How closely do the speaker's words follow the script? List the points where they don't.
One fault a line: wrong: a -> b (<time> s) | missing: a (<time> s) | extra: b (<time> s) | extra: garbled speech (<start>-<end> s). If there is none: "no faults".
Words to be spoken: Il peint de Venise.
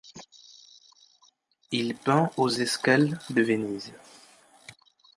extra: aux escales (2.4 s)